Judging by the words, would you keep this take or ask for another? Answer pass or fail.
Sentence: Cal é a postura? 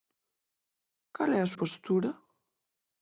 pass